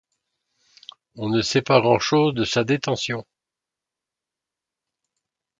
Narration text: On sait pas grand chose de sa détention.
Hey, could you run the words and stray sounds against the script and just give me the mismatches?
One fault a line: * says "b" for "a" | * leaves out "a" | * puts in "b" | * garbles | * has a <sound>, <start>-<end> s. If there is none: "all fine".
* puts in "ne"